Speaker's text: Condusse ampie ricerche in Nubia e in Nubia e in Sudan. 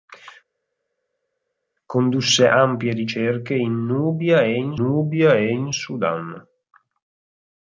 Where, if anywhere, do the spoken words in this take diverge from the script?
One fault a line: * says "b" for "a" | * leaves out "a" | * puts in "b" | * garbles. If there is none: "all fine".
all fine